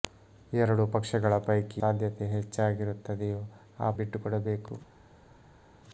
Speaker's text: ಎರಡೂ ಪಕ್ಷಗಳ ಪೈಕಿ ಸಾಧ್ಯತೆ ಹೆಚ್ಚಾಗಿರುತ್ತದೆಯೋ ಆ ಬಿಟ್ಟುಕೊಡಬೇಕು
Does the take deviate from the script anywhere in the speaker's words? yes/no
no